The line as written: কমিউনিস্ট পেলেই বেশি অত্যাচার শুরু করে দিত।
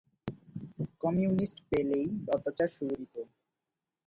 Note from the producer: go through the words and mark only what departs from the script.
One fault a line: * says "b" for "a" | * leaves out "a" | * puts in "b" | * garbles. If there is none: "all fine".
* leaves out "বেশি"
* leaves out "করে"